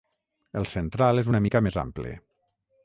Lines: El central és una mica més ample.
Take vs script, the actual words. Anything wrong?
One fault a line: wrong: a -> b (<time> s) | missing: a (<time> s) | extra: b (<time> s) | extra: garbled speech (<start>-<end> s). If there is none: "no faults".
no faults